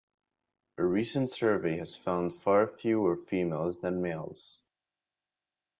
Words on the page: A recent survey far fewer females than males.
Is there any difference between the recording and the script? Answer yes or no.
yes